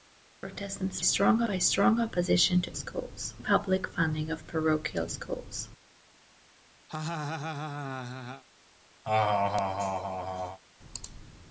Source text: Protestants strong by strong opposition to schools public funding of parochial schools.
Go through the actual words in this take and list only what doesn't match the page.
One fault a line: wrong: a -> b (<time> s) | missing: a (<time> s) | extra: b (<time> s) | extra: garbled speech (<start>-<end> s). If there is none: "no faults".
no faults